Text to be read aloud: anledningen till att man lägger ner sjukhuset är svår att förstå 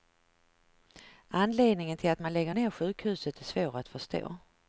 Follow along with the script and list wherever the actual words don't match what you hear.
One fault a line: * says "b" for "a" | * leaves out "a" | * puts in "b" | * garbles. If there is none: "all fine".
all fine